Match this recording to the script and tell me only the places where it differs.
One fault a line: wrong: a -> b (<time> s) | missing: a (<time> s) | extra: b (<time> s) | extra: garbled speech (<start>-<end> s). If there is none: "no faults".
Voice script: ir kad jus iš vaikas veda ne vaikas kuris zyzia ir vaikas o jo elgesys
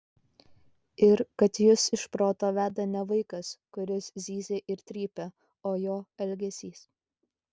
wrong: vaikas -> proto (2.1 s)
wrong: vaikas -> trypia (4.9 s)